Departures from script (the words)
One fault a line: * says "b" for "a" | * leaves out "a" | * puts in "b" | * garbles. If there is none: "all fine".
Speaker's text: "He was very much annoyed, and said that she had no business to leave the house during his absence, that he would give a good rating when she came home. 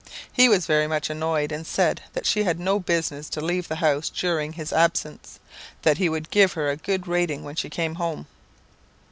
* puts in "her"